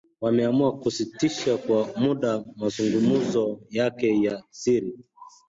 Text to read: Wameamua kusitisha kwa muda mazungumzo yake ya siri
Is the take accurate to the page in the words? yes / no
yes